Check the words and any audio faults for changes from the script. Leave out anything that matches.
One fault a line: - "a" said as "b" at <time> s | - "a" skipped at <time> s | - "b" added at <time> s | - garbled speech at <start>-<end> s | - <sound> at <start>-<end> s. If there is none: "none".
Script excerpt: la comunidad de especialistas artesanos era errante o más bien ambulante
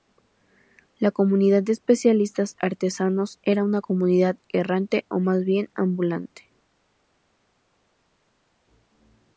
- "una comunidad" added at 3.6 s